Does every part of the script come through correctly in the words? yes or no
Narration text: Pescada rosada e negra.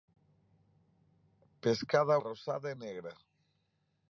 yes